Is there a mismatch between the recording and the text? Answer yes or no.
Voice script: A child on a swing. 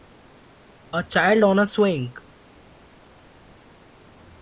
no